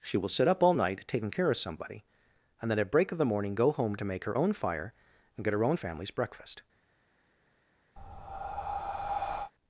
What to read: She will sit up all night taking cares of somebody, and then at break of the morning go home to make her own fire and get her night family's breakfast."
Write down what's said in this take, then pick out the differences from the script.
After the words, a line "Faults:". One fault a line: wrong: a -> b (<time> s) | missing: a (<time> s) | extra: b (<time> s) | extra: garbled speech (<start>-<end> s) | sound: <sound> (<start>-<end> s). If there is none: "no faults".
She will sit up all night taking care of somebody, and then at break of the morning go home to make her own fire and get her own family's breakfast."
Faults:
wrong: cares -> care (1.3 s)
wrong: night -> own (5.6 s)
sound: breath (8.0-9.5 s)